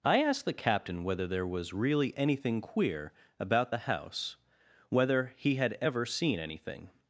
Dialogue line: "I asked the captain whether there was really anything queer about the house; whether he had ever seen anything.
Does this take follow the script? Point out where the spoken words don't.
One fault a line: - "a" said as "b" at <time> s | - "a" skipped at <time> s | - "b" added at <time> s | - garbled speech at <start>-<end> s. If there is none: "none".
none